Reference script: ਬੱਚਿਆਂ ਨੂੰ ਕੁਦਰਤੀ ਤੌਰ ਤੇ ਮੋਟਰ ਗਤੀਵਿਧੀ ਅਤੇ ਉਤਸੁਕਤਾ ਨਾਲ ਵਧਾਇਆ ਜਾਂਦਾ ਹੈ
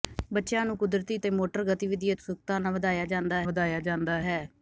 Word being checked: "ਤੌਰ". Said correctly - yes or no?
no